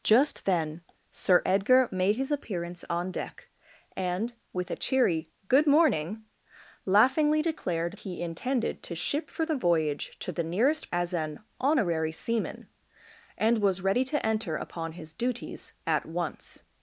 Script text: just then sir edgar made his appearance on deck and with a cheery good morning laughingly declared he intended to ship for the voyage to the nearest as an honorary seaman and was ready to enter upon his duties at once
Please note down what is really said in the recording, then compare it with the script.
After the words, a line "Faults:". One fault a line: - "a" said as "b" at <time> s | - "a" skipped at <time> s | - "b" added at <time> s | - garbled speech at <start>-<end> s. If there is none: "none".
just then sir edgar made his appearance on deck and with a cheery good morning laughingly declared he intended to ship for the voyage to the nearest as an honorary seaman and was ready to enter upon his duties at once
Faults:
none